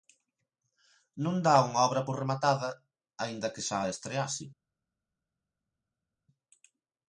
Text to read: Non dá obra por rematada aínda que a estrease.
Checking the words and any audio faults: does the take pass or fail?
fail